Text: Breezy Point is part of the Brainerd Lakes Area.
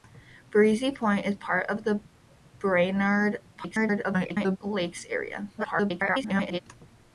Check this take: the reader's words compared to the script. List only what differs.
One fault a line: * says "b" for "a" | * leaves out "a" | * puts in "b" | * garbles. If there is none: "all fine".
* garbles
* garbles